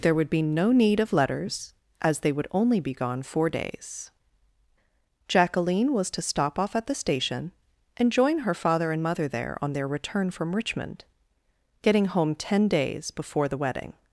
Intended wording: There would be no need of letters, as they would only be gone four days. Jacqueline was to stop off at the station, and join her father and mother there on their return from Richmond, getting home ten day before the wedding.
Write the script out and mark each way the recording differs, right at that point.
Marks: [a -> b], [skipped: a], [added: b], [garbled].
There would be no need of letters, as they would only be gone four days. Jacqueline was to stop off at the station, and join her father and mother there on their return from Richmond, getting home ten [day -> days] before the wedding.